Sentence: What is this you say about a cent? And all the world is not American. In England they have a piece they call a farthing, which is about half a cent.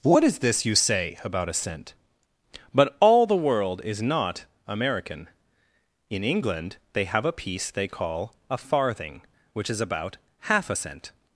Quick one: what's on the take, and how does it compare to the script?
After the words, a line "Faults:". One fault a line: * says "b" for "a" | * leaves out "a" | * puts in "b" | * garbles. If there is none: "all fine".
What is this you say about a cent? But all the world is not American. In England they have a piece they call a farthing, which is about half a cent.
Faults:
* says "But" for "And"